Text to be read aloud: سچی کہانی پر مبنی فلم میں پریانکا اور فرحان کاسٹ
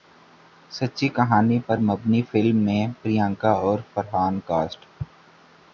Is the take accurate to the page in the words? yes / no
yes